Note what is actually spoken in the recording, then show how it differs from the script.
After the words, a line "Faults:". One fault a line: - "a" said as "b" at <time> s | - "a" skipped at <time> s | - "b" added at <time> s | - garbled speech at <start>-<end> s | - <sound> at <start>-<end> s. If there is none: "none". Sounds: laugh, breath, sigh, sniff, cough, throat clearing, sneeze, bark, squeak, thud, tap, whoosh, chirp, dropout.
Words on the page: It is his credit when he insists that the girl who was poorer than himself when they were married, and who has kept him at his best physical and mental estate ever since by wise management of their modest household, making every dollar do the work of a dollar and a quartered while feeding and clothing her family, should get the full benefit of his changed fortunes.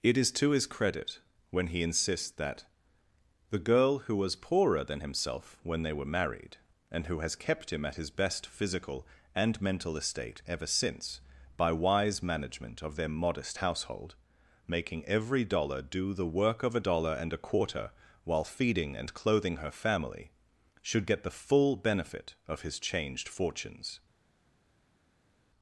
It is to his credit when he insists that the girl who was poorer than himself when they were married, and who has kept him at his best physical and mental estate ever since by wise management of their modest household, making every dollar do the work of a dollar and a quarter while feeding and clothing her family, should get the full benefit of his changed fortunes.
Faults:
- "to" added at 0.3 s
- "quartered" said as "quarter" at 17.4 s